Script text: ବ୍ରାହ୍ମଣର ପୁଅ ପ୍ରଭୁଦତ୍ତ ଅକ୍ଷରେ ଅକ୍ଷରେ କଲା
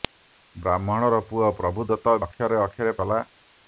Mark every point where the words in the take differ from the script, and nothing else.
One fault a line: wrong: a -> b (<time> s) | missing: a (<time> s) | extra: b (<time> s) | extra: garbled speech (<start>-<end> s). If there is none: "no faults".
no faults